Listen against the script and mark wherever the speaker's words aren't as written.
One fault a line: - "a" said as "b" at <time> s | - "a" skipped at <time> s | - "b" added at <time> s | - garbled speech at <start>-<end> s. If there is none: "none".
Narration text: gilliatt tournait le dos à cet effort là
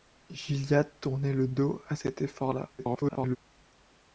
- garbled speech at 2.8-3.4 s